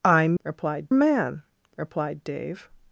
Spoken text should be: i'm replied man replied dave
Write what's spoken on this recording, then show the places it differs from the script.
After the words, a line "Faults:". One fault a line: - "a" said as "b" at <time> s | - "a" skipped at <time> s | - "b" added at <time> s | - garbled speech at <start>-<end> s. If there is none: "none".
i'm replied man replied dave
Faults:
none